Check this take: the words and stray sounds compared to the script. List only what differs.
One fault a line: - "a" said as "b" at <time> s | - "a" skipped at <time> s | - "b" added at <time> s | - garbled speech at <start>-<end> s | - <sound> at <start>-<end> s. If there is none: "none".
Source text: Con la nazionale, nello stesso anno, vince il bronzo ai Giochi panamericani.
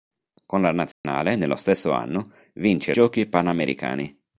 - dropout at 0.9-1.0 s
- "il bronzo ai" skipped at 2.9 s